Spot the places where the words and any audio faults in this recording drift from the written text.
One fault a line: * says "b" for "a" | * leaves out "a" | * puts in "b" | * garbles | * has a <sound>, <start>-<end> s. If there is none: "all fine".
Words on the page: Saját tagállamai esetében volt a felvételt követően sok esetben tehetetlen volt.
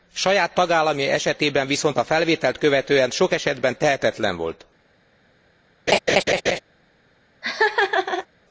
* says "viszont" for "volt"
* has a laugh, 5.9-6.6 s
* has a laugh, 7.4-8.3 s